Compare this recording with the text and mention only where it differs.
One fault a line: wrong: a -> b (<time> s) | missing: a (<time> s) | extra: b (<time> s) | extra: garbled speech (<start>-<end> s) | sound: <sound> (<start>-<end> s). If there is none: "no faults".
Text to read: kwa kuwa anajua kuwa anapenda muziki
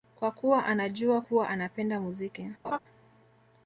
sound: laugh (2.6-2.8 s)